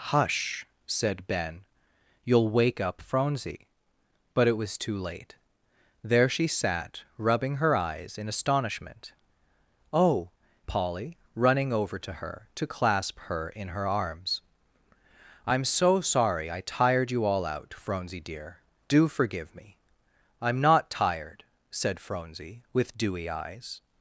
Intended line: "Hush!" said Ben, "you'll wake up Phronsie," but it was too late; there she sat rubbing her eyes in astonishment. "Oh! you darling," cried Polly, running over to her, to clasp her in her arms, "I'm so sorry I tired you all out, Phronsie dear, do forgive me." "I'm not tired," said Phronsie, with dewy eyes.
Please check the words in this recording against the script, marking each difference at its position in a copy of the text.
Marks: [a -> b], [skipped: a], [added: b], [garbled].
"Hush!" said Ben, "you'll wake up Phronsie," but it was too late; there she sat rubbing her eyes in astonishment. "Oh! [skipped: you darling," cried] Polly, running over to her, to clasp her in her arms, "I'm so sorry I tired you all out, Phronsie dear, do forgive me." "I'm not tired," said Phronsie, with dewy eyes.